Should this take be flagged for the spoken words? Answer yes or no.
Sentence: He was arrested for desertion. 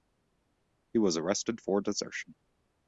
no